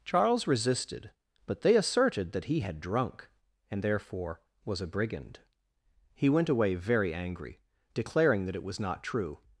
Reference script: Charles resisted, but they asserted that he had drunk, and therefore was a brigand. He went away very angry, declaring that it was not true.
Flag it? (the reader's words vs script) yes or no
no